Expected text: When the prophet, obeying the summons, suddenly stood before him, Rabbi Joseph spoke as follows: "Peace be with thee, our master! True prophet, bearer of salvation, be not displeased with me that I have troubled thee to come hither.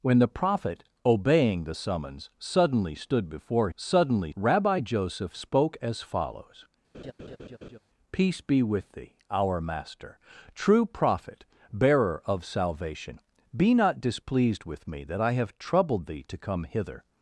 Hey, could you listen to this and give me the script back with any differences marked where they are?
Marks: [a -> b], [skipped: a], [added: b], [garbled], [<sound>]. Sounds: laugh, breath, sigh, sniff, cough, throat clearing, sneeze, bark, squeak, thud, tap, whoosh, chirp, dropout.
When the prophet, obeying the summons, suddenly stood before [him, -> suddenly] Rabbi Joseph spoke as follows: [laugh] "Peace be with thee, our master! True prophet, bearer of salvation, be not displeased with me that I have troubled thee to come hither.